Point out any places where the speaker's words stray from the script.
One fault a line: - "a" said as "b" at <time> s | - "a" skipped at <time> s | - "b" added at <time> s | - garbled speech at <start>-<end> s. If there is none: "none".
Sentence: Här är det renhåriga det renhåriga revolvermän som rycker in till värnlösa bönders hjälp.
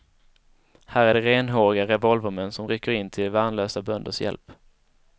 - "det renhåriga" skipped at 1.9 s